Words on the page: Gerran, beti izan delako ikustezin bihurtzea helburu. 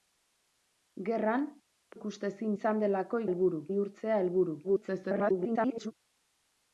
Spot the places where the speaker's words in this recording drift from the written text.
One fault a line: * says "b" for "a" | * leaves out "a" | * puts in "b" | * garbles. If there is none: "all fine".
* says "ikustezin" for "beti"
* says "helburu" for "ikustezin"
* garbles